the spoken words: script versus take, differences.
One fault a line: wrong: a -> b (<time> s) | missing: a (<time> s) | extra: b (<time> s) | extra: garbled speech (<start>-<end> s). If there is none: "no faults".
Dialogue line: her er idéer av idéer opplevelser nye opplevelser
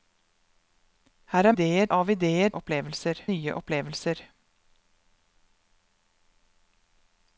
no faults